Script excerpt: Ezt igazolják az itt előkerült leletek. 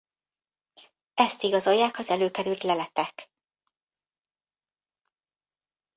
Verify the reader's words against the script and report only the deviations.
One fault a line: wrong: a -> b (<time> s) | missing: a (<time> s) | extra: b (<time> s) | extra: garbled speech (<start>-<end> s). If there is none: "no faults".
missing: itt (2.1 s)